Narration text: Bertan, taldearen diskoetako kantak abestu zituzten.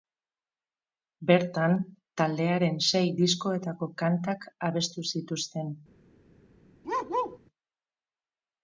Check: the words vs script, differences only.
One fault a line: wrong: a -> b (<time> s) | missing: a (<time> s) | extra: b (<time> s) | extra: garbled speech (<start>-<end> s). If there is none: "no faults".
extra: sei (2.9 s)